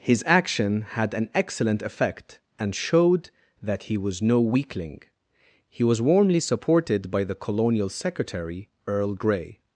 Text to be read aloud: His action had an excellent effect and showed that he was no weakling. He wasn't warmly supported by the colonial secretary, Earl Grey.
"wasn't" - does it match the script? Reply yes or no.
no